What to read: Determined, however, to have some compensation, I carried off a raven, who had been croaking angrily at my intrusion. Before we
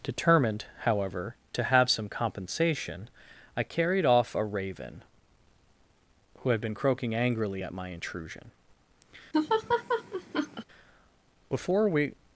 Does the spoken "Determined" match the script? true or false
true